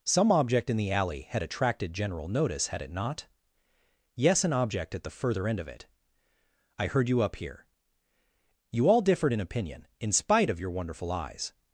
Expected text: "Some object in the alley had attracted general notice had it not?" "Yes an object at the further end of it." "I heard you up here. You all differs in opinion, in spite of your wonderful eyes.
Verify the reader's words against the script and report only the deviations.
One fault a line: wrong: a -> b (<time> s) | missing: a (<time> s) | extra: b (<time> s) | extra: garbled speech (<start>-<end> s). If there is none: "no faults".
wrong: differs -> differed (9.0 s)